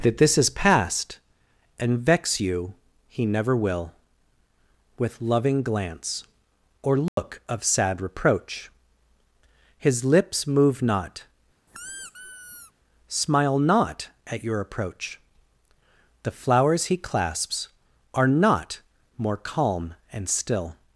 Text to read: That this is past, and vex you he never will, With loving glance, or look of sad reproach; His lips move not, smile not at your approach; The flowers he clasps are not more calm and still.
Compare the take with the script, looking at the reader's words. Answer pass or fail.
pass